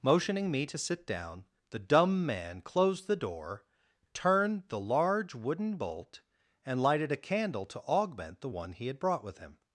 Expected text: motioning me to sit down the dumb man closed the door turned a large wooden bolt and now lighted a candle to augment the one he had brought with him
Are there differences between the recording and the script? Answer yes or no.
yes